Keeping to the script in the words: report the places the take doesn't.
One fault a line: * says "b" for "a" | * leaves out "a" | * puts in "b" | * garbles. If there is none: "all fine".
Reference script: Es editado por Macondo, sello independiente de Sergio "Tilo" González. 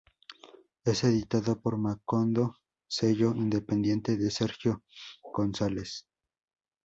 * leaves out "Tilo"